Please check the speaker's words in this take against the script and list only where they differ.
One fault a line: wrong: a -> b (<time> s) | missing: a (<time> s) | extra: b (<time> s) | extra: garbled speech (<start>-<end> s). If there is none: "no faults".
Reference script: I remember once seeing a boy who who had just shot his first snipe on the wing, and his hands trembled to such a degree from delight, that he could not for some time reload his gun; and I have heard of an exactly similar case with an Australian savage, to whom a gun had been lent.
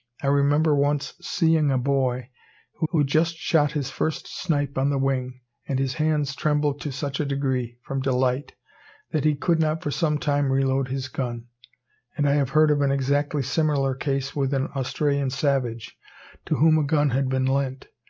no faults